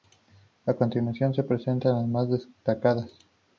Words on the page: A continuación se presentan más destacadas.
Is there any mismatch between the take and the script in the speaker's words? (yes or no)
yes